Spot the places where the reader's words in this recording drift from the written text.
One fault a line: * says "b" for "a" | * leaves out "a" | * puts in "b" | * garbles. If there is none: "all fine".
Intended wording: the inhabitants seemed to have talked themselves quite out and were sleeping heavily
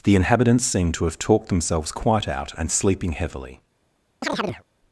* leaves out "were"